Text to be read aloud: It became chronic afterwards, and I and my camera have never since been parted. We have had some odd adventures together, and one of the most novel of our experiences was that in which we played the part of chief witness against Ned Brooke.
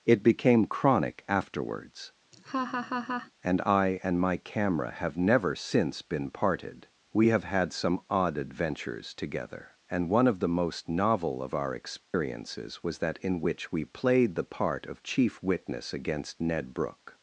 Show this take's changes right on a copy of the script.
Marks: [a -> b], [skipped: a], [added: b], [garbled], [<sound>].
It became chronic afterwards, [laugh] and I and my camera have never since been parted. We have had some odd adventures together, and one of the most novel of our experiences [dropout] was that in which we played the part of chief witness against Ned Brooke.